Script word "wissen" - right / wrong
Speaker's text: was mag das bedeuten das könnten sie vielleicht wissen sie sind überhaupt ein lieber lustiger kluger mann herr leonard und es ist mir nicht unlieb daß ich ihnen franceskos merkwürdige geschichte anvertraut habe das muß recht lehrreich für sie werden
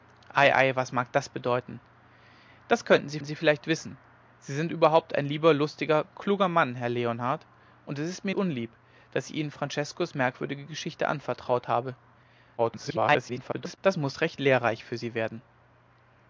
right